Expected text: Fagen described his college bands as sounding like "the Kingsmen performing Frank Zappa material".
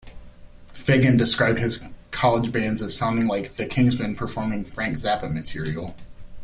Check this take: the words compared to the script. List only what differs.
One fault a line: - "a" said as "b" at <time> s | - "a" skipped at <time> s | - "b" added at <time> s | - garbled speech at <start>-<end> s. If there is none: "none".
none